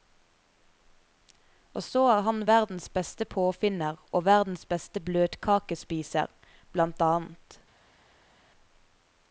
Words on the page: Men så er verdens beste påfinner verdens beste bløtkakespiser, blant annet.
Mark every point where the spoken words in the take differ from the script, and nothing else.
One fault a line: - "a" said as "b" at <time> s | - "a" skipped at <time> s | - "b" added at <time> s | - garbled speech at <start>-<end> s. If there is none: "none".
- "Men" said as "Og" at 1.7 s
- "han" added at 2.2 s
- "og" added at 4.1 s